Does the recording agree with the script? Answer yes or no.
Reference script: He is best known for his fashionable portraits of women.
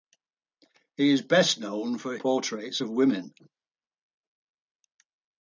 no